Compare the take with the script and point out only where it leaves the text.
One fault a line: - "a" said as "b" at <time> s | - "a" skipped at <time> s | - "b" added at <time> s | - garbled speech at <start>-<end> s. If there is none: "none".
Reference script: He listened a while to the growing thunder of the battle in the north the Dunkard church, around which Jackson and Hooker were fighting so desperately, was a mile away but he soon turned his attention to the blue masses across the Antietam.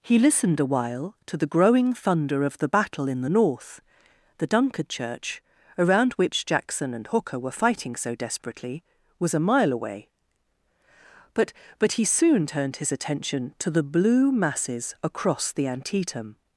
- "but" added at 11.8 s